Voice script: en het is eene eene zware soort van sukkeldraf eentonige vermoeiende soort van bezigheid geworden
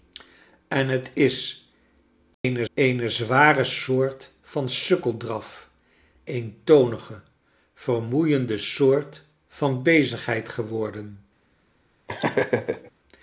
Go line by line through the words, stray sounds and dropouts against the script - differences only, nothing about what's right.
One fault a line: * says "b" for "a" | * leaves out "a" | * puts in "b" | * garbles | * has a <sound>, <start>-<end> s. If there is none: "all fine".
* has a dropout, 2.3-2.4 s
* has a laugh, 12.1-12.9 s